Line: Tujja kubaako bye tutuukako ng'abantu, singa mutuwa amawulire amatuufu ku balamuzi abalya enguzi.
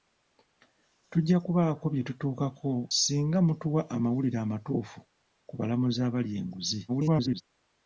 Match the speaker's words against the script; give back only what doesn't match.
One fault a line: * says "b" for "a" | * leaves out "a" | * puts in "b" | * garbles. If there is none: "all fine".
* leaves out "ng'abantu"
* garbles